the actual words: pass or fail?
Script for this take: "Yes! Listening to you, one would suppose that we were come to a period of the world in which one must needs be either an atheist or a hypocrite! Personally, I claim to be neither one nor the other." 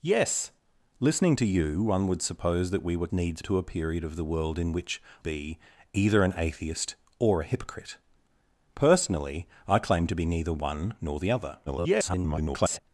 fail